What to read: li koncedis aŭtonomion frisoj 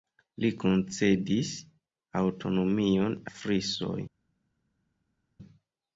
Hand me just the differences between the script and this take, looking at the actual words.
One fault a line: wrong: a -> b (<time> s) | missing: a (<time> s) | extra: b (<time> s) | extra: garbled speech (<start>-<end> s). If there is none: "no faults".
no faults